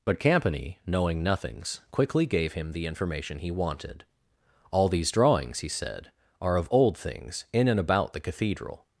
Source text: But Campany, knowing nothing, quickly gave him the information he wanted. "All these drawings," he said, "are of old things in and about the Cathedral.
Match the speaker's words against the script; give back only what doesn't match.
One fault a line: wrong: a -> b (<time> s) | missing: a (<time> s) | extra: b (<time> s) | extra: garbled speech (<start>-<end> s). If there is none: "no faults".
wrong: nothing -> nothings (1.2 s)